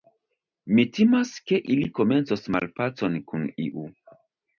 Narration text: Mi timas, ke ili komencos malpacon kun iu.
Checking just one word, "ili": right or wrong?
right